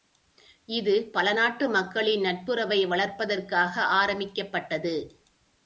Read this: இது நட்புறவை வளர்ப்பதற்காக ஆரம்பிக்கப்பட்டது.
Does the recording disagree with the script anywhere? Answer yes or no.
yes